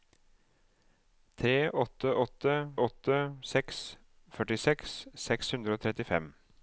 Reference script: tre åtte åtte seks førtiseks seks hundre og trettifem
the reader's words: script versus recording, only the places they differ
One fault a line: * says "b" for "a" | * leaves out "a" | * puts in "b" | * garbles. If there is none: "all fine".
* puts in "åtte"